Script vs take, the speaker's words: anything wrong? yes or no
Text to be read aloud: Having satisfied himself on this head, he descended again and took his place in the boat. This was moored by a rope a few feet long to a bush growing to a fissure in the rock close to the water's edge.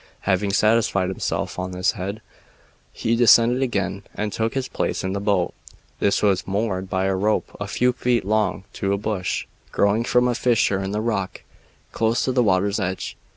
yes